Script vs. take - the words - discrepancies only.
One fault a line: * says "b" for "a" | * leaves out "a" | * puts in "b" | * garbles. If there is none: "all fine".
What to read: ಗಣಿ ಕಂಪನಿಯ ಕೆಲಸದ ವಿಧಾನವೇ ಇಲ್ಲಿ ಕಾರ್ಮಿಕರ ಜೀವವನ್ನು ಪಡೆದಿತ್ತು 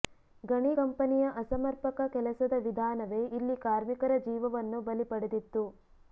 * puts in "ಅಸಮರ್ಪಕ"
* puts in "ಬಲಿ"